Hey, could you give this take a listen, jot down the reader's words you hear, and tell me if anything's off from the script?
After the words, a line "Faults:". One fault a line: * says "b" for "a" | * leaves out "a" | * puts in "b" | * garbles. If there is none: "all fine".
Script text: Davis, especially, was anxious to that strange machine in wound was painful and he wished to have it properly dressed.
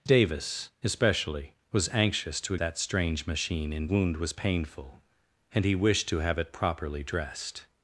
Davis, especially, was anxious to that strange machine in wound was painful and he wished to have it properly dressed.
Faults:
all fine